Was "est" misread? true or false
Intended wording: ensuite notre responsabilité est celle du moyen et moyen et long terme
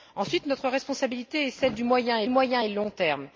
false